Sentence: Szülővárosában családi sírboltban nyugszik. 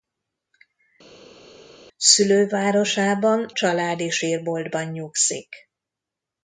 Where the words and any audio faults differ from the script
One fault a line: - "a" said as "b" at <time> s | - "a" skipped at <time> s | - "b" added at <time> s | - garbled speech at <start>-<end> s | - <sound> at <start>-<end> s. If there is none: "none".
none